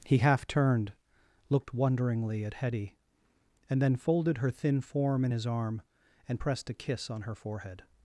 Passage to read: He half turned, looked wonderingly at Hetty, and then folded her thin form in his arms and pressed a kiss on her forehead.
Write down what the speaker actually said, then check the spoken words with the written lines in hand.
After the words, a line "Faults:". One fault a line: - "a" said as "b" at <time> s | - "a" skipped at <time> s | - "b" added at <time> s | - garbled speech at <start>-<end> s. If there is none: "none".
He half turned, looked wonderingly at Hetty, and then folded her thin form in his arm and pressed a kiss on her forehead.
Faults:
- "arms" said as "arm" at 5.5 s